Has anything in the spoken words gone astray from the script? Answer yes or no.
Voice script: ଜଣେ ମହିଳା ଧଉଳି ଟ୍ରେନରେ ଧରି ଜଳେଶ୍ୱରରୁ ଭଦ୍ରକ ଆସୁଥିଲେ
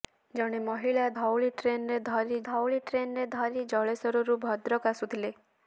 yes